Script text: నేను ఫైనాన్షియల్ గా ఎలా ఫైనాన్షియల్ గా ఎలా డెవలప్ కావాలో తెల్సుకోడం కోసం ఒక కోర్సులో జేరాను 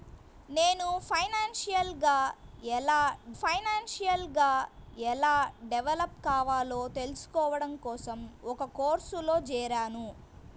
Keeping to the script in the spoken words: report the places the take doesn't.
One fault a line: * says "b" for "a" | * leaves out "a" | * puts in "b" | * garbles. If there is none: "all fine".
all fine